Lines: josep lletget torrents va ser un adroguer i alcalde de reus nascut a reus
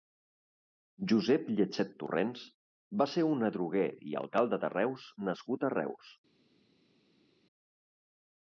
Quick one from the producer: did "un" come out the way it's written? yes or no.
yes